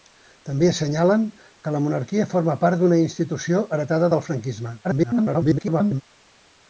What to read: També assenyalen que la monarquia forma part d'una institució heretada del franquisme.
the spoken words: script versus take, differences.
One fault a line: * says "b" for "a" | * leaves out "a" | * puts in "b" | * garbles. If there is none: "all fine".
* garbles